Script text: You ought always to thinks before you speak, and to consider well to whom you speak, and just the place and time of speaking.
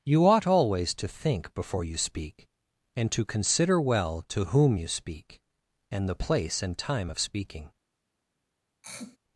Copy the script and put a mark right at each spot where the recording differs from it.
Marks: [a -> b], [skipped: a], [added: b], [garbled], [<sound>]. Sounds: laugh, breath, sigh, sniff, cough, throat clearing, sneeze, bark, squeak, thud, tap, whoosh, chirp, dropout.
You ought always to [thinks -> think] before you speak, and to consider well to whom you speak, and [skipped: just] the place and time of speaking. [throat clearing]